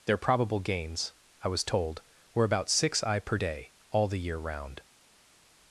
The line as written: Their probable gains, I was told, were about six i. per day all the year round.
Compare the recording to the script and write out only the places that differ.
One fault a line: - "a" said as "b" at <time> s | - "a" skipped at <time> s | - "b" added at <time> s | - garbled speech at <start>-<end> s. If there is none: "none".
none